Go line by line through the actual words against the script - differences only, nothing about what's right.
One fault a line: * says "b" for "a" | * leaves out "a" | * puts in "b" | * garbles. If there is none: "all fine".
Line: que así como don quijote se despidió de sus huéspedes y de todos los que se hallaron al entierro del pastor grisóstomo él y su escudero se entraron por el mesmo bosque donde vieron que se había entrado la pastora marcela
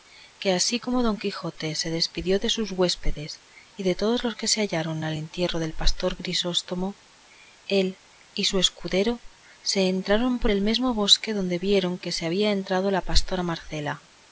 all fine